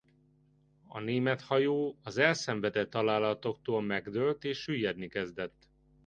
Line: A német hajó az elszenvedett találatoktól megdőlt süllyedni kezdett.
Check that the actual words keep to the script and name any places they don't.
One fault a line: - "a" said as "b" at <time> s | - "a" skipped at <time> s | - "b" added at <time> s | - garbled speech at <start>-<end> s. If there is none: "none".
- "és" added at 4.4 s